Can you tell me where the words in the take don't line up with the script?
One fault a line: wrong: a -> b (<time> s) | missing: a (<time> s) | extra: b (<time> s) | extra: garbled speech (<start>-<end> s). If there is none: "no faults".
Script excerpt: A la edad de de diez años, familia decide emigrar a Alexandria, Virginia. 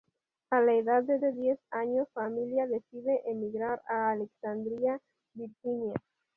no faults